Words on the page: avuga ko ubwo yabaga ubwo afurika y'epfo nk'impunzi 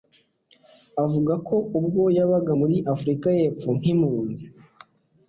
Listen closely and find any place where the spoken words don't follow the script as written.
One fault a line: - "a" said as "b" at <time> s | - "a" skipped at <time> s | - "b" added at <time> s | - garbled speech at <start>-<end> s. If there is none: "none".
- "ubwo" said as "muri" at 2.6 s